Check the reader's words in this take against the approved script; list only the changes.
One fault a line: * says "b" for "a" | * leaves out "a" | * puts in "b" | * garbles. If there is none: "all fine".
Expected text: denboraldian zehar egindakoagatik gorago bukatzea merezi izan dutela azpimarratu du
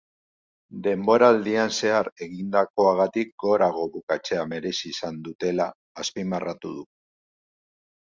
all fine